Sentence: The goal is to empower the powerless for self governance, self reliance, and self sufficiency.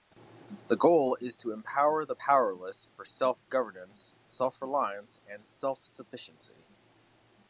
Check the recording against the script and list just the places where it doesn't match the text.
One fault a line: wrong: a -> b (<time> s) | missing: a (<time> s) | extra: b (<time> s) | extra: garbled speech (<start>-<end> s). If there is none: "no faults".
no faults